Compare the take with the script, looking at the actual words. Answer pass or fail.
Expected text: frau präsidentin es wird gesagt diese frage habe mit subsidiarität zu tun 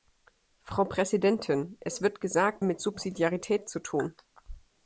fail